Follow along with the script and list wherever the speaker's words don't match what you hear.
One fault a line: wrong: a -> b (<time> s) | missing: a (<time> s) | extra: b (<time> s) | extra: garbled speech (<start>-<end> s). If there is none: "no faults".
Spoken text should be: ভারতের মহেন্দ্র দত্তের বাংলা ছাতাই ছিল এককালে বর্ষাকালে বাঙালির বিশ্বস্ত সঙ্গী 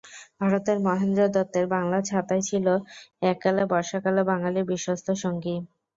no faults